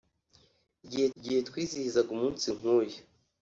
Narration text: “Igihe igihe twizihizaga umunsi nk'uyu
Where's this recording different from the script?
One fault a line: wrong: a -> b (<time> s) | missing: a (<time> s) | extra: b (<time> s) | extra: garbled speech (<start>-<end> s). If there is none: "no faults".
no faults